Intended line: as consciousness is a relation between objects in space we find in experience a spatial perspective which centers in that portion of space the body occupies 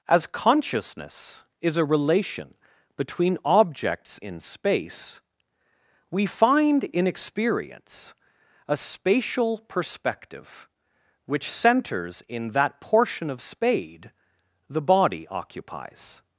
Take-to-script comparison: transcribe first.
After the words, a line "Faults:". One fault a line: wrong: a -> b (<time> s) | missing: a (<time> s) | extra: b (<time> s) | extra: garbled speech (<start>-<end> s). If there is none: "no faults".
as consciousness is a relation between objects in space we find in experience a spatial perspective which centers in that portion of spade the body occupies
Faults:
wrong: space -> spade (13.4 s)